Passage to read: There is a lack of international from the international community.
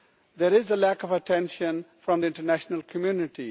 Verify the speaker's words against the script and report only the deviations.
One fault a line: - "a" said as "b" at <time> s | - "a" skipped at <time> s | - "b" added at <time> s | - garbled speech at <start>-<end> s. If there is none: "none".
- "international" said as "attention" at 1.1 s